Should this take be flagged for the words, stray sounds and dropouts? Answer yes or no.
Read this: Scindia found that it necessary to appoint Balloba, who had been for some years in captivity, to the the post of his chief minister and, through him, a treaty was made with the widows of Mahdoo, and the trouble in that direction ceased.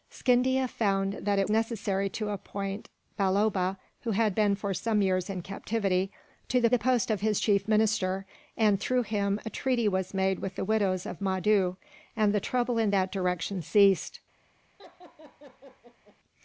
yes